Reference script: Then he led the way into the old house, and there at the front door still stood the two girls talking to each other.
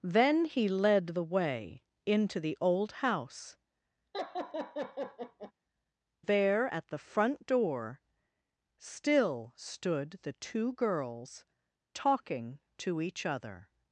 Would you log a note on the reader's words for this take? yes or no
yes